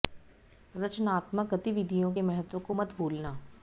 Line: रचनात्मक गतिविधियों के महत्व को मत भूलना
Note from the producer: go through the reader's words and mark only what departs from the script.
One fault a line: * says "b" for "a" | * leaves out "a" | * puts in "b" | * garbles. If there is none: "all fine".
all fine